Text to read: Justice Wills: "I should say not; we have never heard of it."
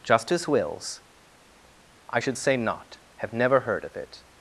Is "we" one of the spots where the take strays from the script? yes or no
yes